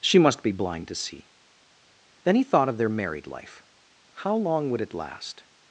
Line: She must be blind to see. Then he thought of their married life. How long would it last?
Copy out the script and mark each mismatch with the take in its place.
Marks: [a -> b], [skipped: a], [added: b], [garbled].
She must be blind to see. Then he thought of their married life. How long would it last?